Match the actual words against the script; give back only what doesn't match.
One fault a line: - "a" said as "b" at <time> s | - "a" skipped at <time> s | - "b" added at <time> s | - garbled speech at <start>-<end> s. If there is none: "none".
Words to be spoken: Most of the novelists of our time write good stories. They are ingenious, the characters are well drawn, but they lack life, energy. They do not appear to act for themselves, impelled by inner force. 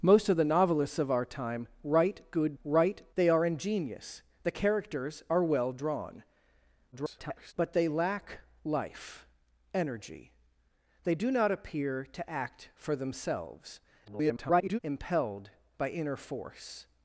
- "stories" said as "write" at 2.6 s
- garbled speech at 6.9-7.5 s
- garbled speech at 14.0-14.8 s